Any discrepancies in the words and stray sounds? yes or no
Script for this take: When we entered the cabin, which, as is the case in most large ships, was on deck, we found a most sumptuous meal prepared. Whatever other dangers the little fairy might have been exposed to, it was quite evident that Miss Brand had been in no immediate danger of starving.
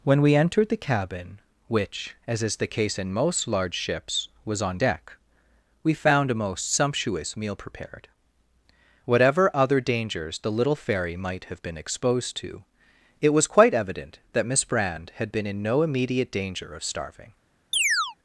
yes